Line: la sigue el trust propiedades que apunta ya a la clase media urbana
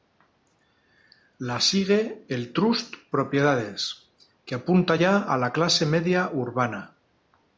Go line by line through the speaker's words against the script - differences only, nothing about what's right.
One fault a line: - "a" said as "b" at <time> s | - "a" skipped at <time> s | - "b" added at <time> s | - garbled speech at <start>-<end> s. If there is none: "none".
none